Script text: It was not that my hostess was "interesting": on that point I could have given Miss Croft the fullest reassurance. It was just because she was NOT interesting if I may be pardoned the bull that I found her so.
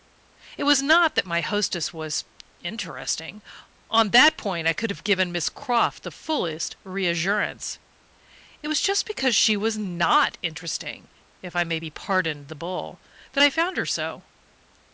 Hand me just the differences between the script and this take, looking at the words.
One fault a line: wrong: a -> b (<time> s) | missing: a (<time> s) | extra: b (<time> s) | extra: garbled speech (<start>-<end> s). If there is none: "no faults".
no faults